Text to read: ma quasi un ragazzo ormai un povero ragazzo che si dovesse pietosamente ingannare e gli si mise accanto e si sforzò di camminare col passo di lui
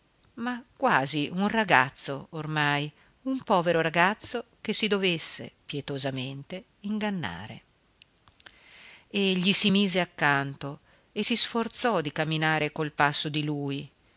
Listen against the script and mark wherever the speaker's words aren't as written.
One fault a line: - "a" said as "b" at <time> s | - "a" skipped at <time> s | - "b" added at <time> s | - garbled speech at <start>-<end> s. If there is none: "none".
none